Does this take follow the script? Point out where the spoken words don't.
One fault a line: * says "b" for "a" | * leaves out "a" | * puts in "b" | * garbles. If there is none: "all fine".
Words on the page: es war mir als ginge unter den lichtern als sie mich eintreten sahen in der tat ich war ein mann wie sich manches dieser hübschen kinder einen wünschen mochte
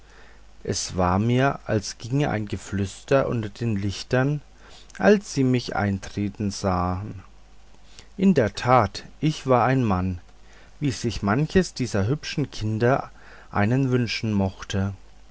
* puts in "ein geflüster"